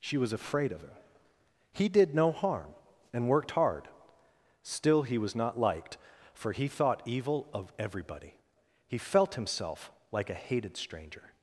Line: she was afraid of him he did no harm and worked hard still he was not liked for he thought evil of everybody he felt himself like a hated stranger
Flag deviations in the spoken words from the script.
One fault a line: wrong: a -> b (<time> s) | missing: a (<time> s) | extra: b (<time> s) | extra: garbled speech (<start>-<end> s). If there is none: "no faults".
no faults